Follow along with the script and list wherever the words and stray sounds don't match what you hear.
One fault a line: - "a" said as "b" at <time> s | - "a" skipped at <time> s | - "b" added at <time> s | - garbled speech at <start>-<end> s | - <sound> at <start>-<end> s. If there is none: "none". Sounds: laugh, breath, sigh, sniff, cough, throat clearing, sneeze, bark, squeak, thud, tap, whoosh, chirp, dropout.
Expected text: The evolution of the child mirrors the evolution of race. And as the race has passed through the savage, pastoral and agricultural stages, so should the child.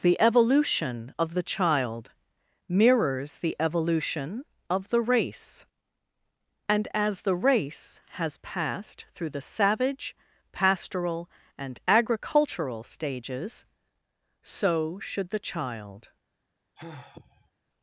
- "the" added at 4.9 s
- sigh at 16.8-17.5 s